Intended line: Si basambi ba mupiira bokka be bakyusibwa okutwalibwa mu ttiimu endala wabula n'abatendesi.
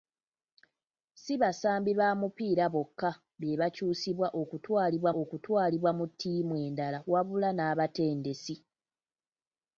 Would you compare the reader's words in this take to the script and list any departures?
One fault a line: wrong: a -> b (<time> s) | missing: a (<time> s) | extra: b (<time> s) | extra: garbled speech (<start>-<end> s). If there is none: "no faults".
extra: okutwalibwa (5.2 s)